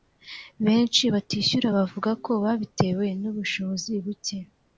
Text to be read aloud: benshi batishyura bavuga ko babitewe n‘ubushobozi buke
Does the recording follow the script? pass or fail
pass